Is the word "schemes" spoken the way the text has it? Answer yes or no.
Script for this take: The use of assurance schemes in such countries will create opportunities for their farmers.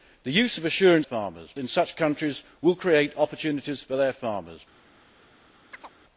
no